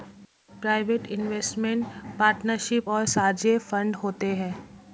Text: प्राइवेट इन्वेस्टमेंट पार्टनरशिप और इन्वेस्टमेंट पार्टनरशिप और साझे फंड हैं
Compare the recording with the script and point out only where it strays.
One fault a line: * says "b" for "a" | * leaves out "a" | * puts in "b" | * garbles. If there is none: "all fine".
* leaves out "इन्वेस्टमेंट पार्टनरशिप और"
* puts in "होते"